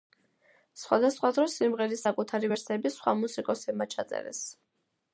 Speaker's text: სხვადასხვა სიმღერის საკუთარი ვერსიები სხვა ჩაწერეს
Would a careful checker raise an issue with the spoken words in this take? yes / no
yes